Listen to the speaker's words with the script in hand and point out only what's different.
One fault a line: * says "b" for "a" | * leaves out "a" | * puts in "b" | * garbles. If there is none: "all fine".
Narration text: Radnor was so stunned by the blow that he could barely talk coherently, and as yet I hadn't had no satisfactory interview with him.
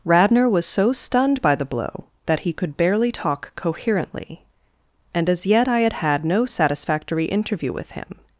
* says "had" for "hadn't"